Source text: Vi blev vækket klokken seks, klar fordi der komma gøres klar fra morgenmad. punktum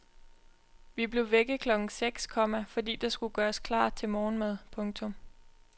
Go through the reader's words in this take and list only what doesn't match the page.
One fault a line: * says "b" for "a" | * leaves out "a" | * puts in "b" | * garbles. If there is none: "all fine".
* says "komma" for "klar"
* says "skulle" for "komma"
* says "til" for "fra"